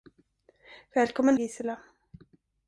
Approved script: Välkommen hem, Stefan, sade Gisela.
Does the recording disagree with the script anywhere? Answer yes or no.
yes